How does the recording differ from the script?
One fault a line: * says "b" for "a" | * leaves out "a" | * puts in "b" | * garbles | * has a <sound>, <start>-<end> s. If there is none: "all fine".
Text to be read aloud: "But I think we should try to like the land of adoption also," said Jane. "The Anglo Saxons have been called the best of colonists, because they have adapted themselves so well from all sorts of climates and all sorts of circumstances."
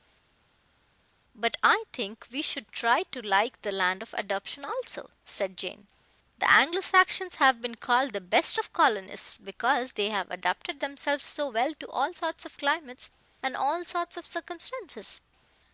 * says "to" for "from"